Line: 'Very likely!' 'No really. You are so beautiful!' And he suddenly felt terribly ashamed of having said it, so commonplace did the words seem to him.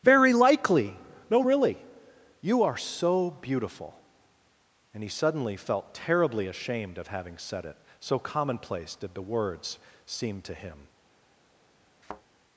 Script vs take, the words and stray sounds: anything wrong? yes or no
yes